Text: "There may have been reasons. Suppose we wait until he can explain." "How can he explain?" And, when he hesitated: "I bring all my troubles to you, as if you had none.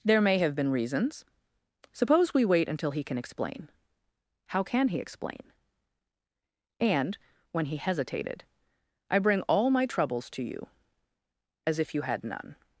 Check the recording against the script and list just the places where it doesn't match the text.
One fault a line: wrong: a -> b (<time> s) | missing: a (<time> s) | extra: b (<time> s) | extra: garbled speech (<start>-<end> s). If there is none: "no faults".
no faults